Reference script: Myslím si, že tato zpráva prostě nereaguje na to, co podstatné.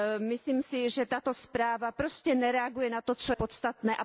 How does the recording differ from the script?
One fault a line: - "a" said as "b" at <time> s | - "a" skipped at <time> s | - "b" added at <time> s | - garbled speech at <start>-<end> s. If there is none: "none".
none